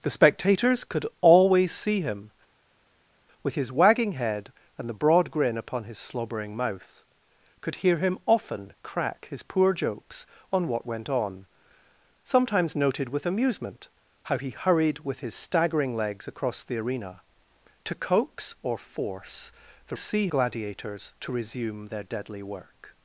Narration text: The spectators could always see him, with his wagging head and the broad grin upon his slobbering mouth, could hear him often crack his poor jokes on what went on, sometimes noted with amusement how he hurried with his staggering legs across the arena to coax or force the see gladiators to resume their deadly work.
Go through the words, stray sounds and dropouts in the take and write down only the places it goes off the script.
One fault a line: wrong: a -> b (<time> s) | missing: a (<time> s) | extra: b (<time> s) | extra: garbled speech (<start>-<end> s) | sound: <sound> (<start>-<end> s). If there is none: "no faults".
no faults